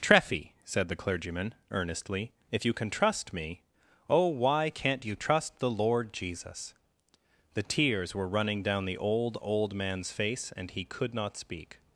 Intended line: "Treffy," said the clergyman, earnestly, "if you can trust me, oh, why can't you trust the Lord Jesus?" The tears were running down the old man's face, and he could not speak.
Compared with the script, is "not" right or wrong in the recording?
right